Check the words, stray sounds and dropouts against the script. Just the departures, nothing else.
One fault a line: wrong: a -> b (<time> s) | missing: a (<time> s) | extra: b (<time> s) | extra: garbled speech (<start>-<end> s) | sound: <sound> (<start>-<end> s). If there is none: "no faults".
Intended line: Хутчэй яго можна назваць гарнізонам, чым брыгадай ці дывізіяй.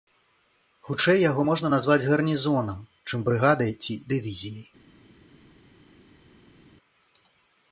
no faults